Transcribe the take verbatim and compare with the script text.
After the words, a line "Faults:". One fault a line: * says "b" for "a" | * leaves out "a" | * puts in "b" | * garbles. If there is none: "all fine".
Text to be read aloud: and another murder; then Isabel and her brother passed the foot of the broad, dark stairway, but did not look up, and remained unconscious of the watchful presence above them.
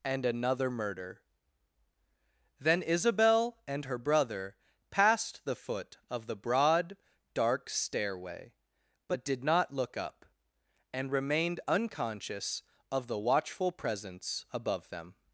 and another murder; then Isabel and her brother passed the foot of the broad, dark stairway, but did not look up, and remained unconscious of the watchful presence above them.
Faults:
all fine